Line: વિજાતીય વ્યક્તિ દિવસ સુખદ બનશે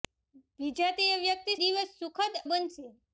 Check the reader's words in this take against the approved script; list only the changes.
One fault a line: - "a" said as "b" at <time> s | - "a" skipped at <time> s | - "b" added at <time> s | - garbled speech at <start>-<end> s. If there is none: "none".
none